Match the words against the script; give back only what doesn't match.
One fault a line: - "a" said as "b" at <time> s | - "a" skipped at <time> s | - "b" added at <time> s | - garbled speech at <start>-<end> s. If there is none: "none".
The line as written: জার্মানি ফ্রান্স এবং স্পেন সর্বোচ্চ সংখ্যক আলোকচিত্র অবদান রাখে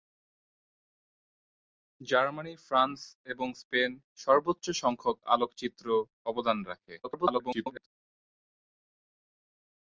- garbled speech at 7.0-7.9 s